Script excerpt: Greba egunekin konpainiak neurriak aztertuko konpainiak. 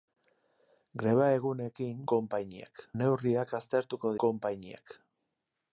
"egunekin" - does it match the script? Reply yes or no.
yes